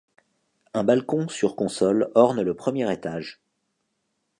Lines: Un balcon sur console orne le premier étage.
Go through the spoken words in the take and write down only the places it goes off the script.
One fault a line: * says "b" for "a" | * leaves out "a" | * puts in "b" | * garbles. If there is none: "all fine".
all fine